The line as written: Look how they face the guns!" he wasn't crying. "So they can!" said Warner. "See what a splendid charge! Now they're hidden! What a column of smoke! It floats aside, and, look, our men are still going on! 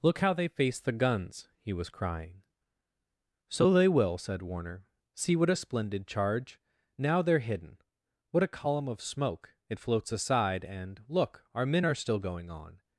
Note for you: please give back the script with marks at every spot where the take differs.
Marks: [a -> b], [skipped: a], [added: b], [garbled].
Look how they face the guns!" he [wasn't -> was] crying. "So they [can!" -> will] said Warner. "See what a splendid charge! Now they're hidden! What a column of smoke! It floats aside, and, look, our men are still going on!